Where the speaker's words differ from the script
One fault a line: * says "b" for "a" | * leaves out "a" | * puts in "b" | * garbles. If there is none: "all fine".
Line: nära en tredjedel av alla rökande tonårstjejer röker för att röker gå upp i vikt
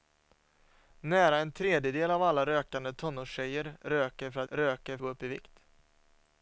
all fine